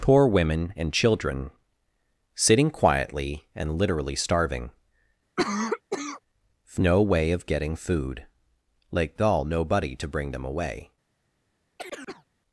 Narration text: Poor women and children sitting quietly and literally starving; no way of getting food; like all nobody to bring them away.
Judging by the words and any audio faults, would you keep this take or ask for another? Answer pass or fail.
fail